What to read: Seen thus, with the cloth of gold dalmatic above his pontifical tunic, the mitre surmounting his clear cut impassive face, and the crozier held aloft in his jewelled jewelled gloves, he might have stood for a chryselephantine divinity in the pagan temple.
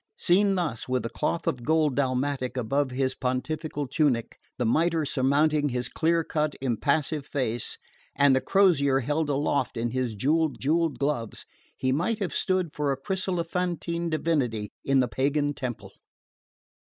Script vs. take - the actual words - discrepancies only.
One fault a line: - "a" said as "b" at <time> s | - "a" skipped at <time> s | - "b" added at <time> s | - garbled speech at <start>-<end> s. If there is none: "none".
none